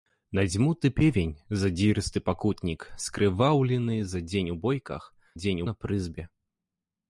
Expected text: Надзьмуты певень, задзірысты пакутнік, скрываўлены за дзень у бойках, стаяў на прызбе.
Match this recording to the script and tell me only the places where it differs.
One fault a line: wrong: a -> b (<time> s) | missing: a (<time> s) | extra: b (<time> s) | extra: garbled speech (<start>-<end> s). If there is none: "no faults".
wrong: стаяў -> дзень (5.3 s)